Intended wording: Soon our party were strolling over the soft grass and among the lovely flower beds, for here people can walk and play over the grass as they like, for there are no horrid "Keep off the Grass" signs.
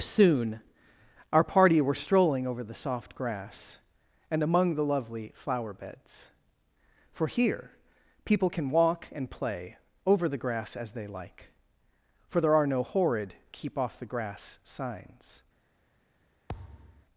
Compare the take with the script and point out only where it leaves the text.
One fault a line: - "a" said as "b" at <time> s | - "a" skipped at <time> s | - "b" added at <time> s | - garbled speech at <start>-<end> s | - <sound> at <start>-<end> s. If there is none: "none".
- thud at 16.5-17.1 s